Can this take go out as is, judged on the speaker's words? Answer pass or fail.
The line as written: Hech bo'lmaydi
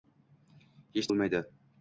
pass